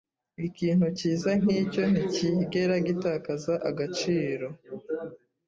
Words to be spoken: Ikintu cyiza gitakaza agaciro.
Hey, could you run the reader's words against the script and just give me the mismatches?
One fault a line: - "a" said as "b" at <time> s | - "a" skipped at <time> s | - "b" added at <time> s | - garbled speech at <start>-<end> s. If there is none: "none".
- "nkicyo nticyigera" added at 1.4 s